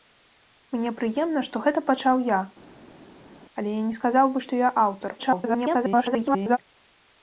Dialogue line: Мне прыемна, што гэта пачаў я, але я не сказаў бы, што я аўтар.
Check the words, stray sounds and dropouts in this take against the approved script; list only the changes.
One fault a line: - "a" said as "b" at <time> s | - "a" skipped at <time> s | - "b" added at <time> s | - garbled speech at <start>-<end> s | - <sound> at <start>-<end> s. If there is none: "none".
- garbled speech at 5.2-6.6 s